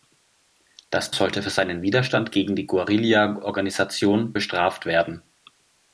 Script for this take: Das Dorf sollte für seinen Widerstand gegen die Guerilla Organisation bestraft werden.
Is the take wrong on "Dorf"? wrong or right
wrong